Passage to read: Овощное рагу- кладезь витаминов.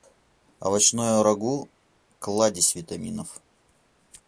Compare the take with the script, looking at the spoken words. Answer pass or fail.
pass